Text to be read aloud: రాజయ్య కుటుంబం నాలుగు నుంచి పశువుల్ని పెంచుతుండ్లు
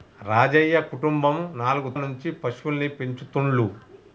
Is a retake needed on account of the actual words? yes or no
no